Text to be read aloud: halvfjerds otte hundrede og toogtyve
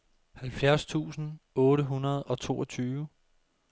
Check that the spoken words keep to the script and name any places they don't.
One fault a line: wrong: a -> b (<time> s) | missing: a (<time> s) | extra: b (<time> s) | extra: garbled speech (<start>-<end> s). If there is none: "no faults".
extra: tusind (0.8 s)